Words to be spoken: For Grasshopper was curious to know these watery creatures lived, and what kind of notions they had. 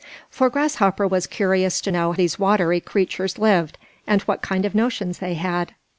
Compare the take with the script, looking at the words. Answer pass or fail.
pass